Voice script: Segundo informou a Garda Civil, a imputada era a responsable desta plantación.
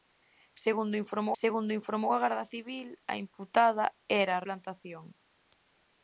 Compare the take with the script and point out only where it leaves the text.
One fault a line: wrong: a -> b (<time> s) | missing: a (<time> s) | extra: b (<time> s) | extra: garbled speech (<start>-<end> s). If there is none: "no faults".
extra: segundo informou (1.4 s)
missing: responsable desta (4.4 s)